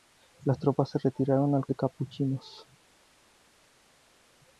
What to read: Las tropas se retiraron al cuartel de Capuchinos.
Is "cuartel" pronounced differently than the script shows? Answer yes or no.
yes